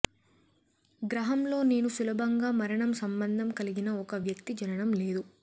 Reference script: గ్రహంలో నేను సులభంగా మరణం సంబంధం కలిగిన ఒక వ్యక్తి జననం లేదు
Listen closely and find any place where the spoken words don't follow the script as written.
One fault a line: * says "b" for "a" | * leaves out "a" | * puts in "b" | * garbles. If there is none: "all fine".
all fine